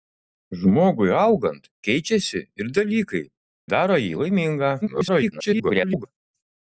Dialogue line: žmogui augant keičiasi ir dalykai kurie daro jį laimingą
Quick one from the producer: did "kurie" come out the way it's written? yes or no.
no